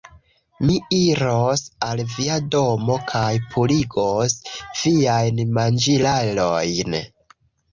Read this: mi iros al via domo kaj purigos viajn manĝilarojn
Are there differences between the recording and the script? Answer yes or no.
no